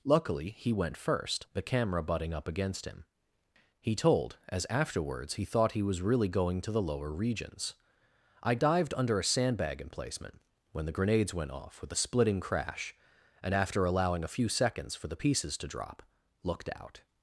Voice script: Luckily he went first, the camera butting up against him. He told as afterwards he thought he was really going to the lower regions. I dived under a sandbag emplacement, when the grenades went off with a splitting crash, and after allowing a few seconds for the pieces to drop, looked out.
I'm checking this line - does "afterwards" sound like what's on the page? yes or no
yes